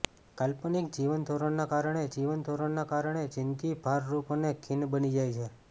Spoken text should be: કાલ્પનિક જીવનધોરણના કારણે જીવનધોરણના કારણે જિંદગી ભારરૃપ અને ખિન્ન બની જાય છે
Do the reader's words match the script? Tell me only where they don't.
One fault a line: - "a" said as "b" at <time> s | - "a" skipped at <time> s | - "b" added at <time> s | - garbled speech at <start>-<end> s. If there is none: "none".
none